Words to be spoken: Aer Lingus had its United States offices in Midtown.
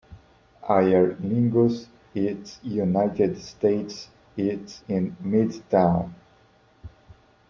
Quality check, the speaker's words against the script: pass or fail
fail